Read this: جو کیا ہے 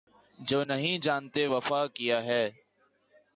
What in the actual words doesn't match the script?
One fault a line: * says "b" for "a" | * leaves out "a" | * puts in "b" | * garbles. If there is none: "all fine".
* puts in "نہیں جانتے وفا"